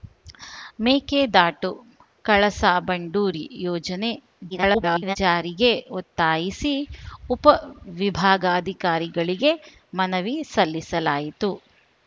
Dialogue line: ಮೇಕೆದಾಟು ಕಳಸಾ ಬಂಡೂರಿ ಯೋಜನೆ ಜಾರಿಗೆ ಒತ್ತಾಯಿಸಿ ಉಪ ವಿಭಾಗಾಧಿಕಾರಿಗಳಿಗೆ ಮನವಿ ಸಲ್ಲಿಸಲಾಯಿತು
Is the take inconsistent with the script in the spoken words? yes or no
yes